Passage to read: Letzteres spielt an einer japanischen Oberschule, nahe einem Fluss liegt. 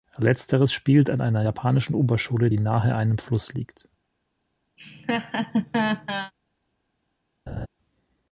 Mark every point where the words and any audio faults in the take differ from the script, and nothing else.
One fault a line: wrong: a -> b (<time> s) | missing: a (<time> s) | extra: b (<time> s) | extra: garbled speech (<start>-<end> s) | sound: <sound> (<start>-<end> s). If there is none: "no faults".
extra: die (2.5 s)
sound: laugh (4.8-6.3 s)
sound: laugh (7.5-7.7 s)